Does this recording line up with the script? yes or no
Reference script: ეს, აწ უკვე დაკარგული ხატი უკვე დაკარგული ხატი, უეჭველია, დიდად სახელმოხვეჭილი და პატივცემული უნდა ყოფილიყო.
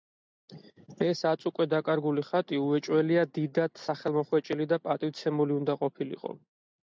no